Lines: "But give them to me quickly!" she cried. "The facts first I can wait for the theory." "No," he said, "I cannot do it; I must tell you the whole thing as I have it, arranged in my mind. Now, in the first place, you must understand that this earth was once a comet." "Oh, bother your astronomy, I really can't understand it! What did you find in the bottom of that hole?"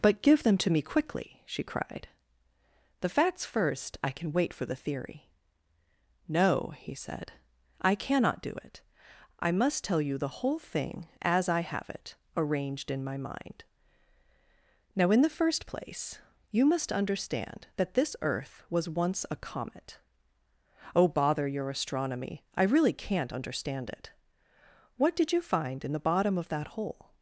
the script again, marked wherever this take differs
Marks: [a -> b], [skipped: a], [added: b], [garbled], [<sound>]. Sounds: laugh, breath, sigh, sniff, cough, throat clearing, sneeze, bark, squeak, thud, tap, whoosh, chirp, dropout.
"But give them to me quickly!" she cried. "The facts first I can wait for the theory." "No," he said, "I cannot do it; I must tell you the whole thing as I have it, arranged in my mind. Now, in the first place, you must understand that this earth was once a comet." "Oh, bother your astronomy, I really can't understand it! What did you find in the bottom of that hole?"